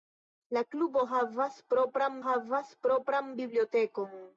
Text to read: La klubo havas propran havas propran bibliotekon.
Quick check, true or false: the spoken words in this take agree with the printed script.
true